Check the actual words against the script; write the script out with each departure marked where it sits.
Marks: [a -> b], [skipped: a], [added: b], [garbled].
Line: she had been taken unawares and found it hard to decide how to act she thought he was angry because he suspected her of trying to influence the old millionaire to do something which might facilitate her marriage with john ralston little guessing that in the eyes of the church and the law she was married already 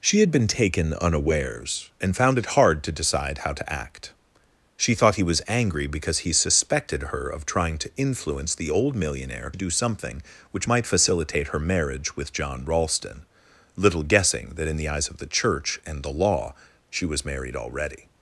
she had been taken unawares and found it hard to decide how to act she thought he was angry because he suspected her of trying to influence the old millionaire [skipped: to] do something which might facilitate her marriage with john ralston little guessing that in the eyes of the church and the law she was married already